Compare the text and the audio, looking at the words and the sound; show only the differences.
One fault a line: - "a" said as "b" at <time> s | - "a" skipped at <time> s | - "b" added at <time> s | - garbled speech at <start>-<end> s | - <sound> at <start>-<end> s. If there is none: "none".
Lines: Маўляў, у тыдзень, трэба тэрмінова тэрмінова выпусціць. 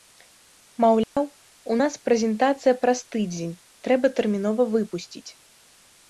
- dropout at 1.0-1.2 s
- "нас прэзентацыя праз" added at 1.8 s
- "тэрмінова" skipped at 4.6 s